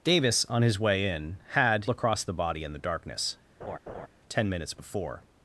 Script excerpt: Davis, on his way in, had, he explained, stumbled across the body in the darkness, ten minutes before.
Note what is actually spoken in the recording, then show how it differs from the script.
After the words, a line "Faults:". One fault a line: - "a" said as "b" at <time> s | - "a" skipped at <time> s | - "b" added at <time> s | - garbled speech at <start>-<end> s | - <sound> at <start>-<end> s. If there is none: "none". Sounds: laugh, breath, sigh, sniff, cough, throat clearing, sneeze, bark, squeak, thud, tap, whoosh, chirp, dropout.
Davis, on his way in, had, across the body in the darkness, ten minutes before.
Faults:
- "he explained stumbled" skipped at 1.9 s
- laugh at 3.6-4.1 s